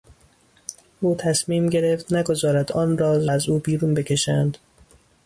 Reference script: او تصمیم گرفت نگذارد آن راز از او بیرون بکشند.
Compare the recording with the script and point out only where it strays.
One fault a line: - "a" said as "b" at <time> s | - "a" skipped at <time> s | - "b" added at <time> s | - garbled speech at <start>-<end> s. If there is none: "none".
none